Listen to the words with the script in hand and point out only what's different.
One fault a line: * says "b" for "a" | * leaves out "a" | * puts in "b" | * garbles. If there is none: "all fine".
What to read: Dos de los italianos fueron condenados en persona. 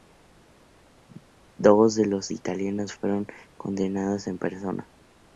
all fine